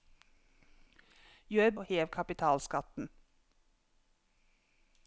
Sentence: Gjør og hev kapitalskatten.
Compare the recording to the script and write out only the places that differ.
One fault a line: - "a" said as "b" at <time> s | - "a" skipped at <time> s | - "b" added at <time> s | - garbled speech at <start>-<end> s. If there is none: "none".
none